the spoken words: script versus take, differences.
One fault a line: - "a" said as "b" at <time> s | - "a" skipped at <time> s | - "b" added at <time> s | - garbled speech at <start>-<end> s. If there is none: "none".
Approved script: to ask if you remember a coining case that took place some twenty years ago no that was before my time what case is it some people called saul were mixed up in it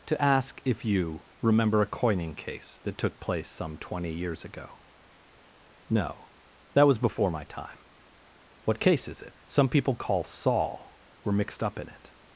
- "called" said as "call" at 9.9 s